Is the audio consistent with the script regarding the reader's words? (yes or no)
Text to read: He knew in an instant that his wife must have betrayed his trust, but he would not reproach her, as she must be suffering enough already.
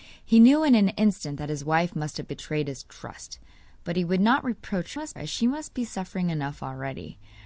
no